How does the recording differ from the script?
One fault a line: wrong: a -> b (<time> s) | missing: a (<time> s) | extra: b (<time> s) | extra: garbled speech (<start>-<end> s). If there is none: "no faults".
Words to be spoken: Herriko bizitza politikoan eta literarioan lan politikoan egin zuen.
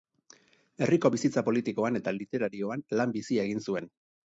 wrong: politikoan -> bizia (3.2 s)